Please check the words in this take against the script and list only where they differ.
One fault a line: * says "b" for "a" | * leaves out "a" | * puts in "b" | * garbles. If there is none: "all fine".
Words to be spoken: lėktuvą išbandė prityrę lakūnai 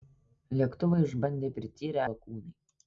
all fine